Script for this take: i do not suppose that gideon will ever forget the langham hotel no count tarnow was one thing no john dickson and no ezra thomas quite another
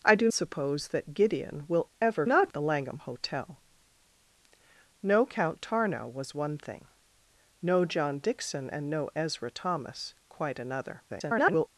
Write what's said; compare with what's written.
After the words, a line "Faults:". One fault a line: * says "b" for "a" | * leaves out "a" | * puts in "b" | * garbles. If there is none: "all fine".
i do suppose that gideon will ever not the langham hotel no count tarnow was one thing no john dickson and no ezra thomas quite another [garbled]
Faults:
* leaves out "not"
* says "not" for "forget"
* garbles